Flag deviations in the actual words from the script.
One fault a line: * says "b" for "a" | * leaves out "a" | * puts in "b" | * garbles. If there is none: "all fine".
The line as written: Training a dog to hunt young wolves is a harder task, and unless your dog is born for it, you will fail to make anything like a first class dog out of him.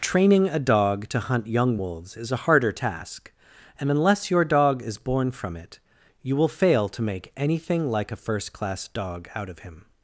* says "from" for "for"